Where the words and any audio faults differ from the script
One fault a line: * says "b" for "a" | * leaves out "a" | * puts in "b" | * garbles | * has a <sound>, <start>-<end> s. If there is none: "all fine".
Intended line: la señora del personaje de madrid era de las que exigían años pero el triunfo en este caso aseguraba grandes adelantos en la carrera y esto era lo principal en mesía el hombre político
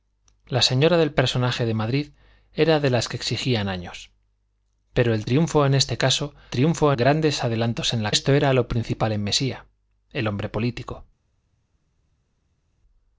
* says "triunfo" for "aseguraba"
* leaves out "carrera y"